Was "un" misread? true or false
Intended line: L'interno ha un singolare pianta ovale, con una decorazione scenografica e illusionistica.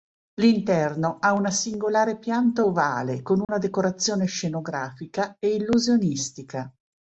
true